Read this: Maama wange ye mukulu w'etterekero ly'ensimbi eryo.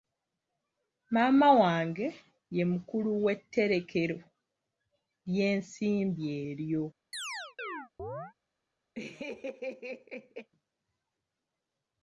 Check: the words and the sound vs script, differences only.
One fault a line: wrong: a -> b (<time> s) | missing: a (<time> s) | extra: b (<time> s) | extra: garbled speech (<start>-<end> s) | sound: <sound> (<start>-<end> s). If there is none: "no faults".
sound: chirp (7.1-8.3 s)
sound: laugh (8.9-10.5 s)